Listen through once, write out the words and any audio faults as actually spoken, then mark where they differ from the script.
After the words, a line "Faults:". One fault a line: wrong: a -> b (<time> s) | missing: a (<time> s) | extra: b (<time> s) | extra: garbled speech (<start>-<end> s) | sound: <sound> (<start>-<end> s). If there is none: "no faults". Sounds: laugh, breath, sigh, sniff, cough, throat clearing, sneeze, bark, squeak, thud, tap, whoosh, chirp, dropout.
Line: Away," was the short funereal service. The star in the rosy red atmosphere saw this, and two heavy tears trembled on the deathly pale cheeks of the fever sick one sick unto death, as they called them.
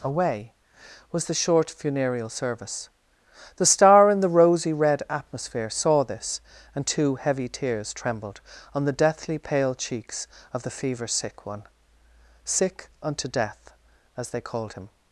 Away," was the short funereal service. The star in the rosy red atmosphere saw this, and two heavy tears trembled on the deathly pale cheeks of the fever sick one sick unto death, as they called him.
Faults:
wrong: them -> him (14.7 s)